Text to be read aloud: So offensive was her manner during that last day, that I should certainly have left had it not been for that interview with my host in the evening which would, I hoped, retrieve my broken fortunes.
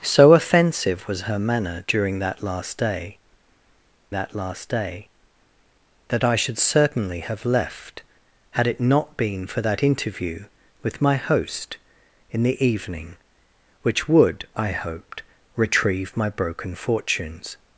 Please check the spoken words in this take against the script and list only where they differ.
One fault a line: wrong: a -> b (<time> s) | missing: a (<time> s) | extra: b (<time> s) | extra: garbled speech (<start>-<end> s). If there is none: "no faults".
extra: last day that (4.4 s)